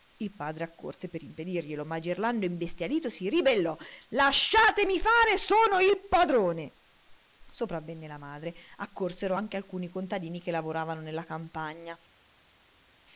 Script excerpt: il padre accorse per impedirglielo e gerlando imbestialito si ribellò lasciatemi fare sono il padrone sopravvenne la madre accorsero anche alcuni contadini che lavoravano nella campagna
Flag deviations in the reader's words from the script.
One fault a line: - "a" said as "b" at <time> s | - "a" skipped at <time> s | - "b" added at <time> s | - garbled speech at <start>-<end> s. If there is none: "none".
- "e" said as "ma" at 1.9 s